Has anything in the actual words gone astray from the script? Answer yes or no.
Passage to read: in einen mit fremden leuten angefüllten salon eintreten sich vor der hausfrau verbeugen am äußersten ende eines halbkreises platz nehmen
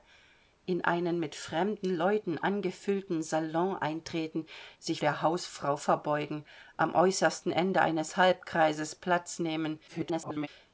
yes